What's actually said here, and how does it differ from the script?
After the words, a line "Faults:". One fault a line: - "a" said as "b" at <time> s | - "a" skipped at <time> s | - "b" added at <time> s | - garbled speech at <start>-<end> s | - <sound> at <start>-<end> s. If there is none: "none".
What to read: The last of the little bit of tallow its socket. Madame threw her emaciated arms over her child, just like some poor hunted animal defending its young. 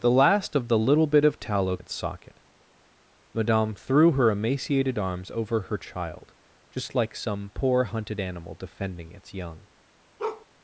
The last of the little bit of tallow its socket. Madame threw her emaciated arms over her child, just like some poor hunted animal defending its young.
Faults:
- bark at 10.2-10.5 s